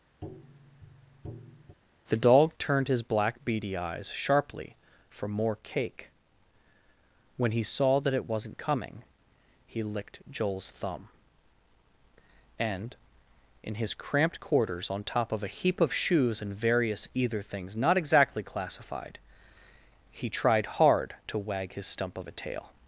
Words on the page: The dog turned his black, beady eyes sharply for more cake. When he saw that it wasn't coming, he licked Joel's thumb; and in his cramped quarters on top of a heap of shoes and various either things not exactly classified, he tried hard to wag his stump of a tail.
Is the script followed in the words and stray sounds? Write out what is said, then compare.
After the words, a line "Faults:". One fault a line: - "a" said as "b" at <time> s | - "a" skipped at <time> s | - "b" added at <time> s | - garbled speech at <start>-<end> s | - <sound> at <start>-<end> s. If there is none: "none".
The dog turned his black, beady eyes sharply for more cake. When he saw that it wasn't coming, he licked Joel's thumb; and in his cramped quarters on top of a heap of shoes and various either things not exactly classified, he tried hard to wag his stump of a tail.
Faults:
- tap at 0.2-1.8 s